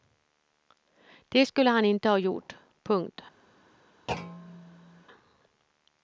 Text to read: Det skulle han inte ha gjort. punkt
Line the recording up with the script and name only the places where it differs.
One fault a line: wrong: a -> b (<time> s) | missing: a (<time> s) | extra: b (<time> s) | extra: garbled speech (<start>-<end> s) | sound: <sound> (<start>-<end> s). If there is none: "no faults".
sound: thud (4.1-5.0 s)